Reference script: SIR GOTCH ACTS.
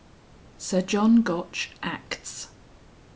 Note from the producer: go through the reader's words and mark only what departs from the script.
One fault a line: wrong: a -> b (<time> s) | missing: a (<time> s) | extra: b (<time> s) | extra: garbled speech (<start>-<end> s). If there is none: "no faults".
extra: JOHN (0.8 s)